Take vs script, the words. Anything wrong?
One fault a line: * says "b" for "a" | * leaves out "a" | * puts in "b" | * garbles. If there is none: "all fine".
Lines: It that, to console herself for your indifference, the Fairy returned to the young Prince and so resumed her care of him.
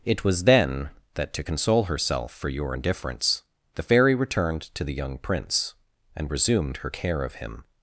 * puts in "was then"
* leaves out "so"